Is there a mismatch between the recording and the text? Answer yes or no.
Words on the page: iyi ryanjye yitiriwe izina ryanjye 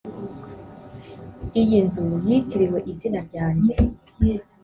yes